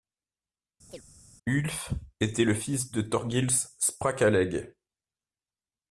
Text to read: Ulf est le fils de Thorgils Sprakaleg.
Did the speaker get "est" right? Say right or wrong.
wrong